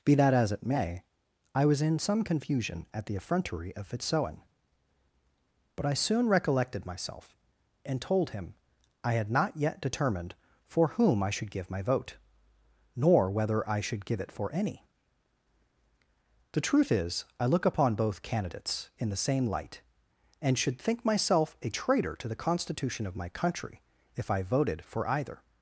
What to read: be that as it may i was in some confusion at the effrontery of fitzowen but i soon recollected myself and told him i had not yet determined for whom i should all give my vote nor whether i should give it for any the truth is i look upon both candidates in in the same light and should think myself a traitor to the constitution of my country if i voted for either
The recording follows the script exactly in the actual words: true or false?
false